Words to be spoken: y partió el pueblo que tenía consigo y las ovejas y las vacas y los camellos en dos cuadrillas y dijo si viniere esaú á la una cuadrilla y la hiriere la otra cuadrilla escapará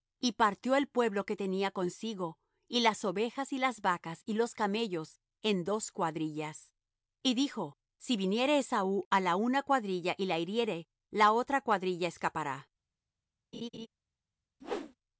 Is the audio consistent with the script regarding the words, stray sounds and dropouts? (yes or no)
no